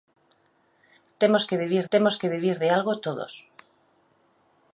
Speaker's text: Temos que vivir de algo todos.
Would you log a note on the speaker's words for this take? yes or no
yes